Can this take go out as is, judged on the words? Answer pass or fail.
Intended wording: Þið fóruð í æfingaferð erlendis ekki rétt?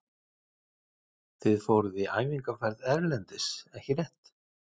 pass